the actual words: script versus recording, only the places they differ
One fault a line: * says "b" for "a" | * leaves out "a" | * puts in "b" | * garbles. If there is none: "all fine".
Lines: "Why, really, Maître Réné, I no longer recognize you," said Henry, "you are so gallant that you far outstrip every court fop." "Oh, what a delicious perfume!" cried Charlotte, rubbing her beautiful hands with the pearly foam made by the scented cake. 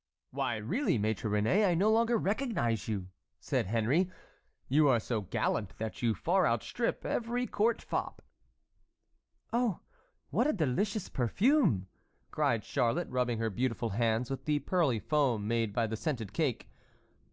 all fine